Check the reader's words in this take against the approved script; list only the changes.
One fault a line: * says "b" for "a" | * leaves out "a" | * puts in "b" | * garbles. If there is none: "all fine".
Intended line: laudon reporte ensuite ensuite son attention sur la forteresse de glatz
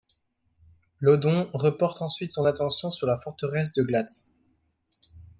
* leaves out "ensuite"